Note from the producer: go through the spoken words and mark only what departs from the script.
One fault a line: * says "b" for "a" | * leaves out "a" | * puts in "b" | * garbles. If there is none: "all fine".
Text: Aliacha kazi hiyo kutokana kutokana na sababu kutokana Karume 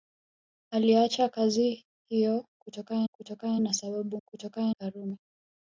all fine